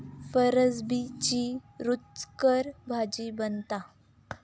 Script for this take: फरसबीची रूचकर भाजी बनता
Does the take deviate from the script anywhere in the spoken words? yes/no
no